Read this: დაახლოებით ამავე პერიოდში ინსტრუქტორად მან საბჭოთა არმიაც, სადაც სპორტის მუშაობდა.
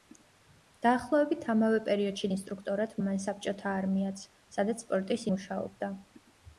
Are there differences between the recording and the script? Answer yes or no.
no